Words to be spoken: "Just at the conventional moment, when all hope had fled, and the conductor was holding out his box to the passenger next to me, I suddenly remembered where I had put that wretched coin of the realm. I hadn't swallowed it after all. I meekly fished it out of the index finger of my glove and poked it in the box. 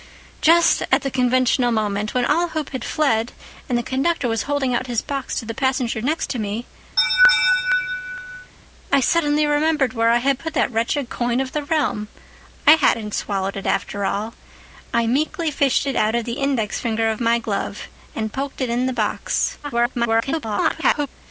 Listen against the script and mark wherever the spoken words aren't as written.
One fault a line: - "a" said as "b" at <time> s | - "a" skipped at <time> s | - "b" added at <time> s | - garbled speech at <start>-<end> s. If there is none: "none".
- garbled speech at 19.6-21.1 s